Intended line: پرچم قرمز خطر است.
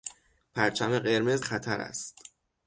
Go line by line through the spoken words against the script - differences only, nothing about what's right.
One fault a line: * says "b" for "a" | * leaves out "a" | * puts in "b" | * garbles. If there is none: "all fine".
all fine